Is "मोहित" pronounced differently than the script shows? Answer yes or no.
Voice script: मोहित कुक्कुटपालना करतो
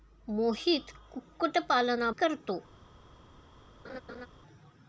no